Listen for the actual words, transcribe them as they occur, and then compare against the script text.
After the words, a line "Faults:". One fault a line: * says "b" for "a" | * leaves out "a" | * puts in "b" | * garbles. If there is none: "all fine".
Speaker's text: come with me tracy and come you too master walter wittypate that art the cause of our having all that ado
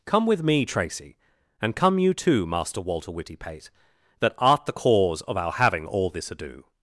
come with me tracy and come you too master walter wittypate that art the cause of our having all this ado
Faults:
* says "this" for "that"